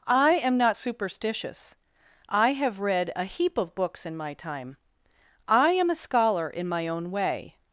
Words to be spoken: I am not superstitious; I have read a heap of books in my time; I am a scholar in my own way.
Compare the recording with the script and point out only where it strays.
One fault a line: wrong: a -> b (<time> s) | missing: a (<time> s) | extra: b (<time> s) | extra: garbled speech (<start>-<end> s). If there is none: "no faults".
no faults